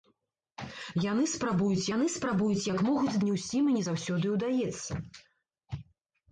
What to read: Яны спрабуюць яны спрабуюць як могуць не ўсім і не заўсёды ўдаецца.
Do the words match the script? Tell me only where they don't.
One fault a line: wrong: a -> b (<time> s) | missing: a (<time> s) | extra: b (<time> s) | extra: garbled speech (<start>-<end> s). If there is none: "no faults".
no faults